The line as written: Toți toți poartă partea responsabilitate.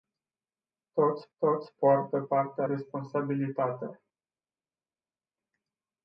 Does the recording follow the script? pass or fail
pass